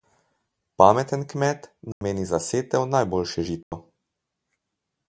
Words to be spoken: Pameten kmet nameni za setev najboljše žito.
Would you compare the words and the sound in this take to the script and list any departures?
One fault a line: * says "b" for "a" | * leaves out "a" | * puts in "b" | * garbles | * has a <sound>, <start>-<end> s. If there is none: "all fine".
* has a dropout, 1.9-2.0 s
* has a dropout, 3.6-3.7 s